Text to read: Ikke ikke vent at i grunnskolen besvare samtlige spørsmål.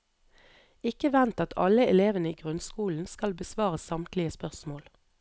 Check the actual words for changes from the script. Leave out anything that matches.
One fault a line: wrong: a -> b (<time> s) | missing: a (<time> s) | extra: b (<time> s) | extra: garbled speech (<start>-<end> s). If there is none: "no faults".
missing: ikke (1.1 s)
extra: alle elevene (1.6 s)
extra: skal (3.1 s)